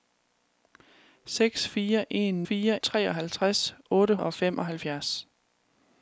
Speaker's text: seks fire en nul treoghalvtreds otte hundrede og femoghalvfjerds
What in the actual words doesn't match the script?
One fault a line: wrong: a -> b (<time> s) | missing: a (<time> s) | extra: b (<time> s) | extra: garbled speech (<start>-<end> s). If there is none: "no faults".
wrong: nul -> fire (2.4 s)
missing: hundrede (4.2 s)